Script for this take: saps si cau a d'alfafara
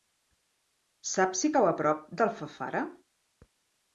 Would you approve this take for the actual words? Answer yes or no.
no